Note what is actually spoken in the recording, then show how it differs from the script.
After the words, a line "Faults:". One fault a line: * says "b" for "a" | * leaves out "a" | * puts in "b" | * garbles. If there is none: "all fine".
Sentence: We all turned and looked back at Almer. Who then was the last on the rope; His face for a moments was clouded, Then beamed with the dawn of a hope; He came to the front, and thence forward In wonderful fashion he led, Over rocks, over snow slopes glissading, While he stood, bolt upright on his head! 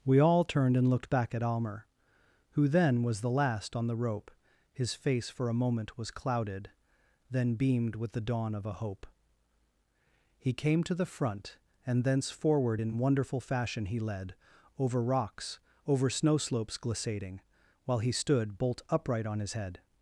We all turned and looked back at Almer. Who then was the last on the rope; His face for a moment was clouded, Then beamed with the dawn of a hope; He came to the front, and thence forward In wonderful fashion he led, Over rocks, over snow slopes glissading, While he stood, bolt upright on his head!
Faults:
* says "moment" for "moments"